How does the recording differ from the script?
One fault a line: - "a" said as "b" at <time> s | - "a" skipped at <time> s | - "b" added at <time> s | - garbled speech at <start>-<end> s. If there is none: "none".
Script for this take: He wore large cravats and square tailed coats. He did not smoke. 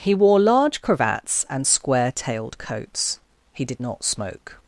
none